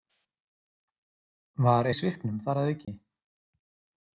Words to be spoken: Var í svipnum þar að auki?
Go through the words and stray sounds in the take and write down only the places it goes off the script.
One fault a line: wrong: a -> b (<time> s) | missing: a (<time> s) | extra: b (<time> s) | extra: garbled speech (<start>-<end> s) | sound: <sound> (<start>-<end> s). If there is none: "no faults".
sound: dropout (2.8-2.9 s)